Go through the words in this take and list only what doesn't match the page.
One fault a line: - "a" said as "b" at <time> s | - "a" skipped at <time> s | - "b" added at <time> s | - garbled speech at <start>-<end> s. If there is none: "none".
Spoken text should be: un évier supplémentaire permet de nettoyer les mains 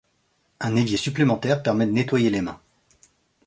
none